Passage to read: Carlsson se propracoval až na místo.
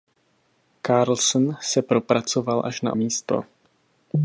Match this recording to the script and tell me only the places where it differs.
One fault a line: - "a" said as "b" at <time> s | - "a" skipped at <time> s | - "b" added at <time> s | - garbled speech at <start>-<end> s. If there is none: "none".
none